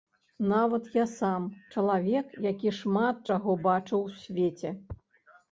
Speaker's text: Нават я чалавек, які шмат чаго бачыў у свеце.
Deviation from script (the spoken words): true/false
true